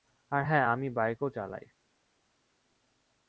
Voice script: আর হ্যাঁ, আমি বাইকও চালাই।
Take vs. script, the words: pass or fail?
pass